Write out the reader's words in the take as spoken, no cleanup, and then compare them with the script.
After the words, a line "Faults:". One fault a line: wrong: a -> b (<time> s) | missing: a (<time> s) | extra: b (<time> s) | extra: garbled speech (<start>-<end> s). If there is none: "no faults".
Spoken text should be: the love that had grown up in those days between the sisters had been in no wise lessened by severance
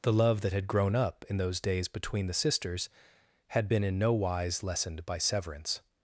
the love that had grown up in those days between the sisters had been in no wise lessened by severance
Faults:
no faults